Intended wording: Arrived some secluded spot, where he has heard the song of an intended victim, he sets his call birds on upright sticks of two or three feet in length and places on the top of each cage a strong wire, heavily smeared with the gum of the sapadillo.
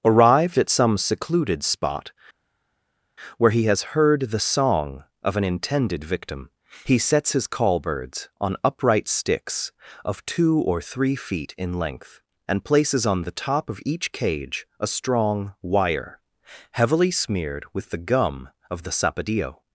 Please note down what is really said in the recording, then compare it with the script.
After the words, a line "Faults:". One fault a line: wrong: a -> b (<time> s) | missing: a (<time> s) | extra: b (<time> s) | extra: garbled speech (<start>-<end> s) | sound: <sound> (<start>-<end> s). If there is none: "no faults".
Arrived at some secluded spot, where he has heard the song of an intended victim, he sets his call birds on upright sticks of two or three feet in length and places on the top of each cage a strong wire, heavily smeared with the gum of the sapadillo.
Faults:
extra: at (0.6 s)